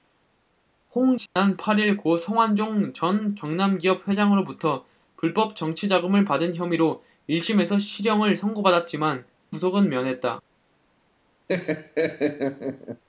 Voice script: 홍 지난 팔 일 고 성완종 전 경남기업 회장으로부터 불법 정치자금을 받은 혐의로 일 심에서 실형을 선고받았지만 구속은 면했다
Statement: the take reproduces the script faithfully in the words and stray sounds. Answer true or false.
false